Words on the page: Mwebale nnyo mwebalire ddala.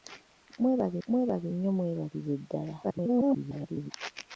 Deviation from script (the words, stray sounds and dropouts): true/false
true